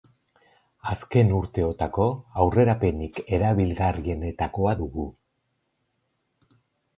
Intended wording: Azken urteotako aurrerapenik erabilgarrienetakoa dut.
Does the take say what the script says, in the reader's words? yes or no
no